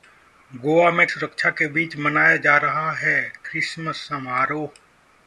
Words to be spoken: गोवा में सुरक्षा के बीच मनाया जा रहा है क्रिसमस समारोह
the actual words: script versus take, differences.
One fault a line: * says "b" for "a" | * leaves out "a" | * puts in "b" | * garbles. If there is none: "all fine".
all fine